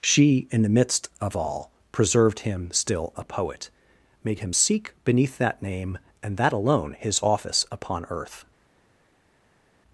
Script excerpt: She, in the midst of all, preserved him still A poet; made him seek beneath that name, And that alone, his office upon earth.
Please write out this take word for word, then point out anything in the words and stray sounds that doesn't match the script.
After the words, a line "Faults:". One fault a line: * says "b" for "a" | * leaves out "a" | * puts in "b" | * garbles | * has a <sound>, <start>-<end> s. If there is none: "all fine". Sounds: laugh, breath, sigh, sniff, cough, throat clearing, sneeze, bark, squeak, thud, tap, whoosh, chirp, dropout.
She, in the midst of all, preserved him still A poet; made him seek beneath that name, And that alone, his office upon earth.
Faults:
all fine